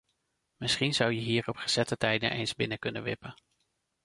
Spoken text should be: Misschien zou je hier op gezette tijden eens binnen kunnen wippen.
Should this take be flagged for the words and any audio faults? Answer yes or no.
no